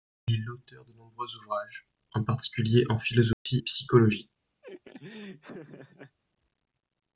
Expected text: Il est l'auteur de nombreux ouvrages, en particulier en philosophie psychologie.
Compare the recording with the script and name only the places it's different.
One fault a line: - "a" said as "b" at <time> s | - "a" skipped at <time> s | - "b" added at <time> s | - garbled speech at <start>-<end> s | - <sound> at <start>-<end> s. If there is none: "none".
- dropout at 3.3-3.5 s
- laugh at 4.6-6.2 s